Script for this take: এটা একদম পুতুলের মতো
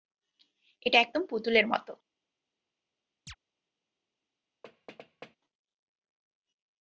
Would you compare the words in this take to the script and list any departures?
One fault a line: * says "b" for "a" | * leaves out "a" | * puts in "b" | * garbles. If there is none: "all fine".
all fine